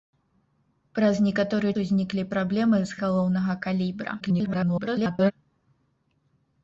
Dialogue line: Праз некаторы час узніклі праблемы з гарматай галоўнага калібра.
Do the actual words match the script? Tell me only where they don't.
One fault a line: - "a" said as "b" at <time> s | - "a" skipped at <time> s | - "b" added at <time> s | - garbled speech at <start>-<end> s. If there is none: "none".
- "час" skipped at 1.7 s
- "гарматай" skipped at 3.0 s
- garbled speech at 4.2-5.3 s